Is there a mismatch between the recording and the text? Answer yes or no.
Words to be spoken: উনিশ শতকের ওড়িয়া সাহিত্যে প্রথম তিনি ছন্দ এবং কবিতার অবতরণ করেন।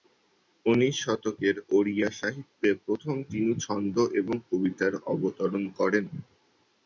no